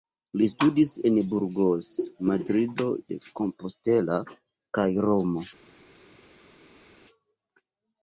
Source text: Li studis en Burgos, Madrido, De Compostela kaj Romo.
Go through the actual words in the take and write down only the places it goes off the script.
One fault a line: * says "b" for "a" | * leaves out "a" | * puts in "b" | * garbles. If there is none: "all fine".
all fine